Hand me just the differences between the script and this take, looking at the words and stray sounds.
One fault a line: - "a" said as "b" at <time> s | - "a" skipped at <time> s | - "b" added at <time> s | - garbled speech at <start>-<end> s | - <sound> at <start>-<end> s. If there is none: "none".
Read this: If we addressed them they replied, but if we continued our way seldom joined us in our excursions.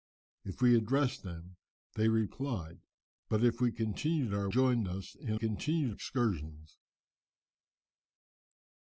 - "way seldom" skipped at 4.5 s
- "our" said as "continued" at 5.3 s